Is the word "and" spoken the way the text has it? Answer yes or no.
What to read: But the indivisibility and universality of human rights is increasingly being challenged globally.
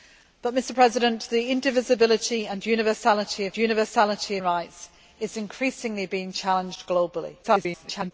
yes